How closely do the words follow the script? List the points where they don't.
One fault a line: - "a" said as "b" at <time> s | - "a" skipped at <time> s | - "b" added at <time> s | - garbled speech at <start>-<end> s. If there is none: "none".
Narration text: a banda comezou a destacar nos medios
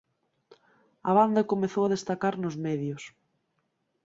none